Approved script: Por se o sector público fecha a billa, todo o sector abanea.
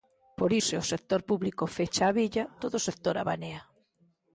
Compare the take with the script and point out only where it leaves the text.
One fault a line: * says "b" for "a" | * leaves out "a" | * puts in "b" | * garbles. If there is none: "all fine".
all fine